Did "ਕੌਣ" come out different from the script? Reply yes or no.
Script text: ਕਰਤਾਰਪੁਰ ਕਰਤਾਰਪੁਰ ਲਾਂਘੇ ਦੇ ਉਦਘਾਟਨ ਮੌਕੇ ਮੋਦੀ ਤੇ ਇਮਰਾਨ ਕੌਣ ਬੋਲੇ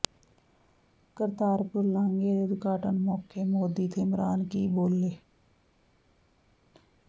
yes